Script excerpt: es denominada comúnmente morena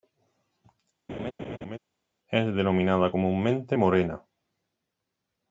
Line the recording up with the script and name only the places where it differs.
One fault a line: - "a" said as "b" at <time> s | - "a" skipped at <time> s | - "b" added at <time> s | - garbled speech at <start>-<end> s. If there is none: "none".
none